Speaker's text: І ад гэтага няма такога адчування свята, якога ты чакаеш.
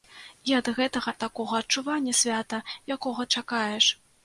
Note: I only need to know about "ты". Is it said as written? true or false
false